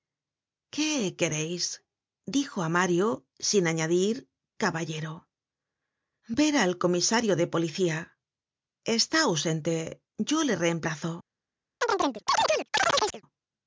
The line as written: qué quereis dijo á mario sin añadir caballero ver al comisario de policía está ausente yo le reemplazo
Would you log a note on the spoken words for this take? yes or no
no